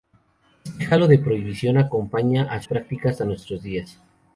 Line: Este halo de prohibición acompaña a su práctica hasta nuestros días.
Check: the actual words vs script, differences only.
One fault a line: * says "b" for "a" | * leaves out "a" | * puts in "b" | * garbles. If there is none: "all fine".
* leaves out "su"